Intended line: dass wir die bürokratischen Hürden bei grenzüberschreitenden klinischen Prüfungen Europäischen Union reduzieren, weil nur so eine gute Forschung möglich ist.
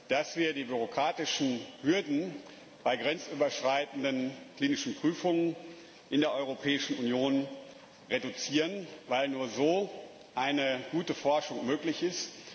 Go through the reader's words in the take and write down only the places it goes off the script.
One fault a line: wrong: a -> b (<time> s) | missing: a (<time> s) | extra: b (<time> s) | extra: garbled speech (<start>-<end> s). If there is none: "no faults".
extra: in der (6.1 s)